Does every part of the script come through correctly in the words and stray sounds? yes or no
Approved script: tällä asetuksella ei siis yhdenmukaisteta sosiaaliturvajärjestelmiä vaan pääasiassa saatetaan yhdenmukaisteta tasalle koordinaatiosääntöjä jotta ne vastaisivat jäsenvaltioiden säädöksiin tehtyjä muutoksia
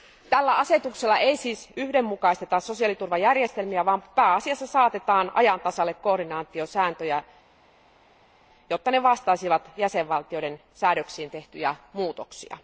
no